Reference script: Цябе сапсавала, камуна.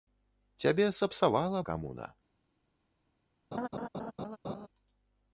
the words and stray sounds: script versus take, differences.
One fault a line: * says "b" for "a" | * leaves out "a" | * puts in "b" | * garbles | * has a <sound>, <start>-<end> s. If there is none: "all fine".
* has a laugh, 3.5-4.7 s